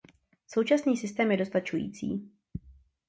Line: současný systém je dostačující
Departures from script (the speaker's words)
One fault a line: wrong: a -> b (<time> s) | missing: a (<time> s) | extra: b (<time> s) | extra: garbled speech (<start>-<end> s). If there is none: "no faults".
no faults